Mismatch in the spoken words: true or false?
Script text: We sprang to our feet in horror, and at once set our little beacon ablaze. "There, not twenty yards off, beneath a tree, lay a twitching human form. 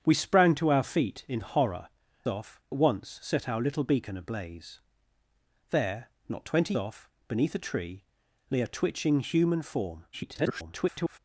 true